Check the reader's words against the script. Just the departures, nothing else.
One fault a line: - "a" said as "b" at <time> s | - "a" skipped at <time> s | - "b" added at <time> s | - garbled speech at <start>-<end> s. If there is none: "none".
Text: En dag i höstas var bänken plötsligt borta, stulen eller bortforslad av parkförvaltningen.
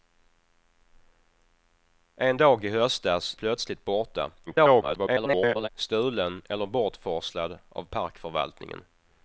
- "var bänken" skipped at 3.4 s
- garbled speech at 4.5-5.7 s